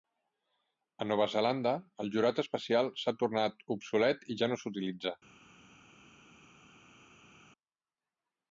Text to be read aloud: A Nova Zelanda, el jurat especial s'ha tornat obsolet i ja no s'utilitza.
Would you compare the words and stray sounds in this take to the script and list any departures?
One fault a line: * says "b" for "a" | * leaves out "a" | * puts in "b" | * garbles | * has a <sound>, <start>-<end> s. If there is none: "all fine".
all fine